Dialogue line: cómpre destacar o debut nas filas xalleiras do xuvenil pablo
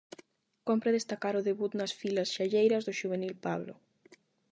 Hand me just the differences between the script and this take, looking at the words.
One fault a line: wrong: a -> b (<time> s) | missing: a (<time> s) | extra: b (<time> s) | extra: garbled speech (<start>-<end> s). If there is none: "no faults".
no faults